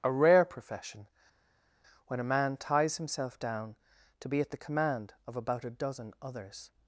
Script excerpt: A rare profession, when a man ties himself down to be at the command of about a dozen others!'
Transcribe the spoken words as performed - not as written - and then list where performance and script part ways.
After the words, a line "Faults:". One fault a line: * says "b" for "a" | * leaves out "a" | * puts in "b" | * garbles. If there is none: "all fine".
A rare profession, when a man ties himself down to be at the command of about a dozen others!'
Faults:
all fine